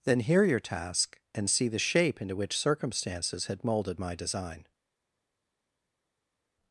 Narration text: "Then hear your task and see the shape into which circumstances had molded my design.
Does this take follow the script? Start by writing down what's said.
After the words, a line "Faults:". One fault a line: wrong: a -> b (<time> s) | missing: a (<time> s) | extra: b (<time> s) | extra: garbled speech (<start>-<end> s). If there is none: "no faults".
"Then hear your task and see the shape into which circumstances had molded my design.
Faults:
no faults